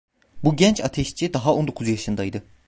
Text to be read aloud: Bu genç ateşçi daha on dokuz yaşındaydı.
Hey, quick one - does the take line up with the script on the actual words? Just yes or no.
yes